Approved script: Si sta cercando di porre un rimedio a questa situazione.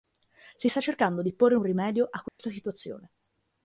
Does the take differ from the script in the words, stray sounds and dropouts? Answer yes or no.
yes